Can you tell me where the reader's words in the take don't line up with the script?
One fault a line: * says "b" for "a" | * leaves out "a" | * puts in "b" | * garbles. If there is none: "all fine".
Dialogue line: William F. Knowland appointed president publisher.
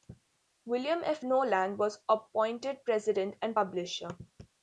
* puts in "was"
* puts in "and"